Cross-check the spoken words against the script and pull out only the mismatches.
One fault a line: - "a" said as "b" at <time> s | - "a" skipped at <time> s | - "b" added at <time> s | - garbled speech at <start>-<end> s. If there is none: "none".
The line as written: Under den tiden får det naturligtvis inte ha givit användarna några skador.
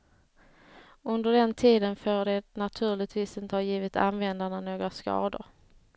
none